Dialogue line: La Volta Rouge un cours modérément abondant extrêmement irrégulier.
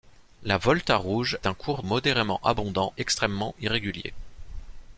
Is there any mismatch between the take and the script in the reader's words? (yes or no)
no